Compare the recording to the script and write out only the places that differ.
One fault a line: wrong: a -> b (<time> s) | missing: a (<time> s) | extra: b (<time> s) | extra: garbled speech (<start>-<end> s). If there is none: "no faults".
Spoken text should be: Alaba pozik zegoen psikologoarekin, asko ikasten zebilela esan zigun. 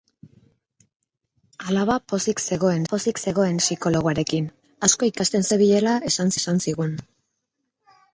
extra: pozik zegoen (2.9 s)
extra: esan (6.4 s)